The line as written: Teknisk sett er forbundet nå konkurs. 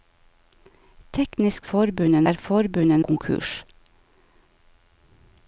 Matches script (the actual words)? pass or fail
fail